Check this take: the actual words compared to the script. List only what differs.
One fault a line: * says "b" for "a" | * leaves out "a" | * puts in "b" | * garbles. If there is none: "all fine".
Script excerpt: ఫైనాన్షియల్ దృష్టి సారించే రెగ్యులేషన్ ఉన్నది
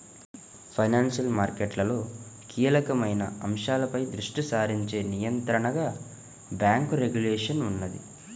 * puts in "మార్కెట్లలో కీలకమైన అంశాలపై"
* puts in "నియంత్రణగా బ్యేంకు"